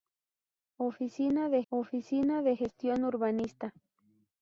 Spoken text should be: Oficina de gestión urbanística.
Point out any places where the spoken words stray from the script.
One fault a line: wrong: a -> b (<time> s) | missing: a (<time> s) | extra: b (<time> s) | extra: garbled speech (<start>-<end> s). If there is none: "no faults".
extra: oficina de (1.7 s)